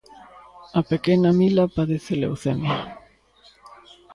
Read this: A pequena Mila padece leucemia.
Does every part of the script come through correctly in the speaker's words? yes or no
yes